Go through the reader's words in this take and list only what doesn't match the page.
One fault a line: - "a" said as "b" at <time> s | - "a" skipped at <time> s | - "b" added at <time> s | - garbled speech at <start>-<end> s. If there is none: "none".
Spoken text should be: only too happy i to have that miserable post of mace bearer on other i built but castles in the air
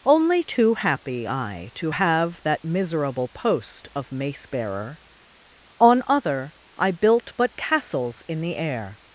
none